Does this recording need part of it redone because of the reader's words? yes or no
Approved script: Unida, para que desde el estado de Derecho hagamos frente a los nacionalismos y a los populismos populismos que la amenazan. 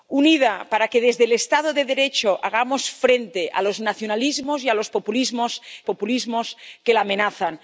no